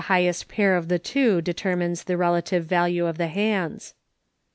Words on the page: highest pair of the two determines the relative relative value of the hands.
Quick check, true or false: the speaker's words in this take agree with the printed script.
false